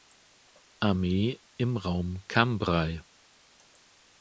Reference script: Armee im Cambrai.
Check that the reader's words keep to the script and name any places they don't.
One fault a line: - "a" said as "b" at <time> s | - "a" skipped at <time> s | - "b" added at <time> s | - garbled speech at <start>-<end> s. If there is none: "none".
- "Raum" added at 1.8 s